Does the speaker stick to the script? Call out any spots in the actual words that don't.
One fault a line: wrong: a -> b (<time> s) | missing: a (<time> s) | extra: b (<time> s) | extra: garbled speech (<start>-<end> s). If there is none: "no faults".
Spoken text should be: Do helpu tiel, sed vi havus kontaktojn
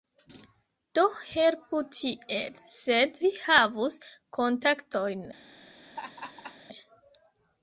no faults